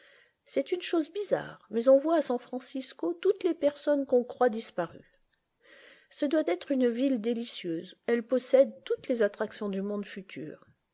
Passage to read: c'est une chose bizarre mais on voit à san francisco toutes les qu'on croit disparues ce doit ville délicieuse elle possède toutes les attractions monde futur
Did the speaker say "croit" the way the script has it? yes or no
yes